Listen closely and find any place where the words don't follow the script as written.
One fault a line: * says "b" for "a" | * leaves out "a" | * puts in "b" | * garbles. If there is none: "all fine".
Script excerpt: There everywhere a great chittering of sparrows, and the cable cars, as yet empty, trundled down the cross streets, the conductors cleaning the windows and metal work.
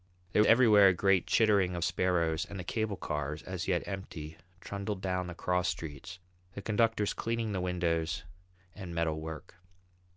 all fine